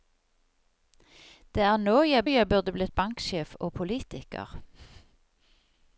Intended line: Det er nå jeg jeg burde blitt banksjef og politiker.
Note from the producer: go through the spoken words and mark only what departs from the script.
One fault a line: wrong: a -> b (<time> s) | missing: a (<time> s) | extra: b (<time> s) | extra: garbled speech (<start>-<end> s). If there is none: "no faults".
no faults